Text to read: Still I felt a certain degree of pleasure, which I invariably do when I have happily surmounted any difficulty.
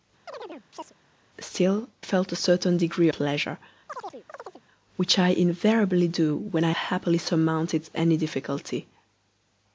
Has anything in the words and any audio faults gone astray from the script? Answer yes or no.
yes